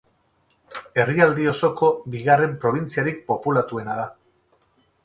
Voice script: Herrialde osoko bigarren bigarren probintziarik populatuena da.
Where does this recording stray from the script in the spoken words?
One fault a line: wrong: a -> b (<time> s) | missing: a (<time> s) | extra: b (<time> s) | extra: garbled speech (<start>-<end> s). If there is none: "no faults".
missing: bigarren (2.6 s)